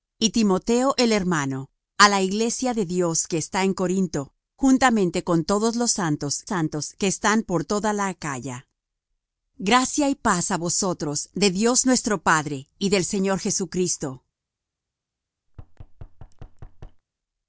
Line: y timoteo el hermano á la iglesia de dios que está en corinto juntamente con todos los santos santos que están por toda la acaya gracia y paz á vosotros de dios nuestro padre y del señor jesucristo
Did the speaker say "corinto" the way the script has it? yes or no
yes